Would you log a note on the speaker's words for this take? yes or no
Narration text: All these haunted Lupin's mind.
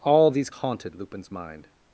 no